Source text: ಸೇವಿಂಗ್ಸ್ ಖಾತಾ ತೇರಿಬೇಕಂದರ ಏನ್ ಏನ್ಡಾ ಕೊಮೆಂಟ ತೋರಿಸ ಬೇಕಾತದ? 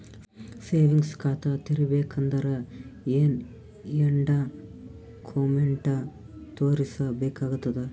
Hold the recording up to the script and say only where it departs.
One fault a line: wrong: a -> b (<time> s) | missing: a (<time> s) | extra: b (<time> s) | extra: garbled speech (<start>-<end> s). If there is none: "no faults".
no faults